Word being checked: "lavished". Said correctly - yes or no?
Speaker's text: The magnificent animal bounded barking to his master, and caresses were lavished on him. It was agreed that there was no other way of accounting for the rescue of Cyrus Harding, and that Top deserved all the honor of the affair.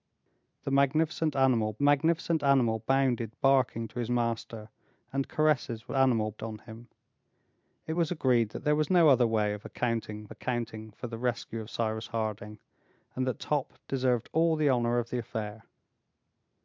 no